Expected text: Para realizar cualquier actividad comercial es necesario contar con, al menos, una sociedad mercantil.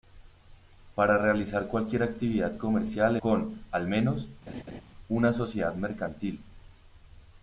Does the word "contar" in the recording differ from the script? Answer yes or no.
yes